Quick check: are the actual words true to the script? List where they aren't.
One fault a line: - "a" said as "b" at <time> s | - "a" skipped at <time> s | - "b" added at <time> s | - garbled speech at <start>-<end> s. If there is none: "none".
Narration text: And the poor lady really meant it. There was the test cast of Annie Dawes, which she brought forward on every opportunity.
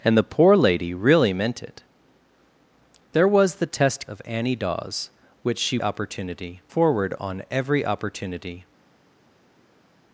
- "cast" skipped at 4.1 s
- "brought" said as "opportunity" at 5.8 s